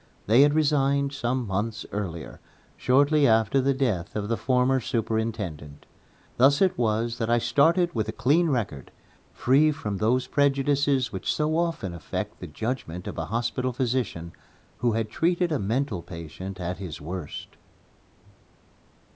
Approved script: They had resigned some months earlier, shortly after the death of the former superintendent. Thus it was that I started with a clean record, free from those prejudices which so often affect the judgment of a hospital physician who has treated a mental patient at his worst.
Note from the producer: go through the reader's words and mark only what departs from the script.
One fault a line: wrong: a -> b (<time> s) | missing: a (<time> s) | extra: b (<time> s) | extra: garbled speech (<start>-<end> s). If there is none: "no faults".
no faults